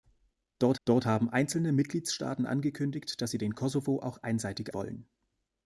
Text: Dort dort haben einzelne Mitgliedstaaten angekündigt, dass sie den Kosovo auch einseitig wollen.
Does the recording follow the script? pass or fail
pass